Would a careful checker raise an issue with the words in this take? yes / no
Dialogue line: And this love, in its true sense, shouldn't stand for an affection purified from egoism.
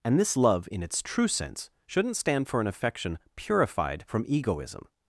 no